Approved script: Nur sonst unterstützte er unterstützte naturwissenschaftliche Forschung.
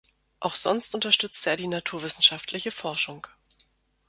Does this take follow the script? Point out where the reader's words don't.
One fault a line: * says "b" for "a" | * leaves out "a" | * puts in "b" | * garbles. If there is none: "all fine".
* says "Auch" for "Nur"
* says "die" for "unterstützte"